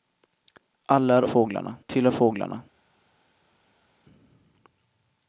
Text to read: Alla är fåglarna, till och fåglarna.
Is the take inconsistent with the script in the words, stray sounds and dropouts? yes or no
no